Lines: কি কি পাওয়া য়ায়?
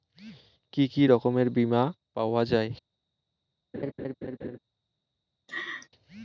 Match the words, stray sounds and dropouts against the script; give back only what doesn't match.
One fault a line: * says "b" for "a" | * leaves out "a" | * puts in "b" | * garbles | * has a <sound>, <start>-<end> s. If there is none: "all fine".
* puts in "রকমের বিমা"
* has a laugh, 3.7-4.6 s
* has a laugh, 5.5-5.9 s